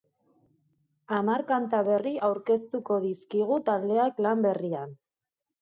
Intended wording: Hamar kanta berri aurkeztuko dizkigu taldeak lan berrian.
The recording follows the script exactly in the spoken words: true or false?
true